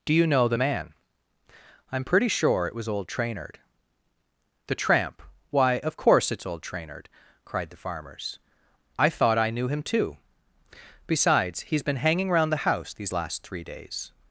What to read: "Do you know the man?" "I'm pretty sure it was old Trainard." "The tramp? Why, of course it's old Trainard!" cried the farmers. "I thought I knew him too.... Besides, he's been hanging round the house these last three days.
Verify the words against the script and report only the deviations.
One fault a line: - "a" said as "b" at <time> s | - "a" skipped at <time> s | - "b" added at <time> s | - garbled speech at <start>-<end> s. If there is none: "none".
none